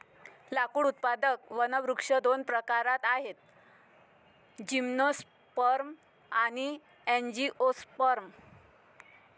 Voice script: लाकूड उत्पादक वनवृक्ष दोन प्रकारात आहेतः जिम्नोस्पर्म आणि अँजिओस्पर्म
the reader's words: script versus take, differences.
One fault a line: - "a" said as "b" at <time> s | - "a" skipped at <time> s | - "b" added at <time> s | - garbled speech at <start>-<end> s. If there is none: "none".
none